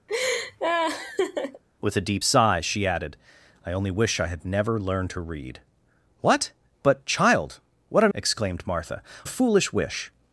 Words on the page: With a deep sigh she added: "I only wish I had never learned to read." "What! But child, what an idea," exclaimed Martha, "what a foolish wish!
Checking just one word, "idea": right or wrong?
wrong